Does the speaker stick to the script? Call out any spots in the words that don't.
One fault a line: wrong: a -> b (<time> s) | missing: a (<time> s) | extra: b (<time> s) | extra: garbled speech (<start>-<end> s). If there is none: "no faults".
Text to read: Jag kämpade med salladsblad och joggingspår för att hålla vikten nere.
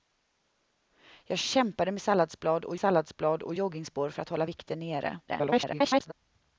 extra: salladsblad och (2.8 s)
extra: garbled speech (5.3-6.1 s)